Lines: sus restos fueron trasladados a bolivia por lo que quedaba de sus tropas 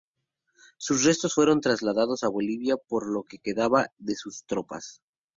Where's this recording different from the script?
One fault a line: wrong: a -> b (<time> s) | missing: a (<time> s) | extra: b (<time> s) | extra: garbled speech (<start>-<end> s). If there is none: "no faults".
no faults